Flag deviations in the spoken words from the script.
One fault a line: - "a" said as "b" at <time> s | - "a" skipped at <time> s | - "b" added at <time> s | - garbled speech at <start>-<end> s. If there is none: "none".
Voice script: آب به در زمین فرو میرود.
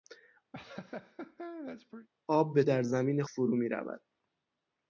none